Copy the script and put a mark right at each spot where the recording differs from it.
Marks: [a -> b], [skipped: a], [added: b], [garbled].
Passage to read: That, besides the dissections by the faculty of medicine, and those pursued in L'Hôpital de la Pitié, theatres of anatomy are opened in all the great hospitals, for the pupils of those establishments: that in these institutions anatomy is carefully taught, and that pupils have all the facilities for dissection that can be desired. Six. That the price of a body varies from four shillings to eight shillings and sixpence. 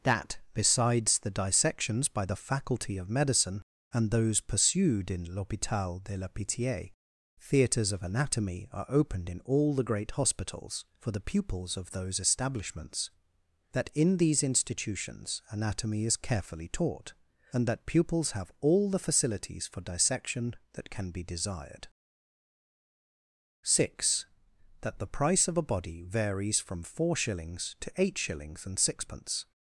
That, besides the dissections by the faculty of medicine, and those pursued in L'Hôpital de la Pitié, theatres of anatomy are opened in all the great hospitals, for the pupils of those establishments: that in these institutions anatomy is carefully taught, and that pupils have all the facilities for dissection that can be desired. Six. That the price of a body varies from four shillings to eight shillings and sixpence.